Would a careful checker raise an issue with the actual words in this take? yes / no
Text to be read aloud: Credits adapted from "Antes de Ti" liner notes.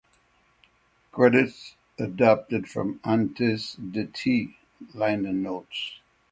no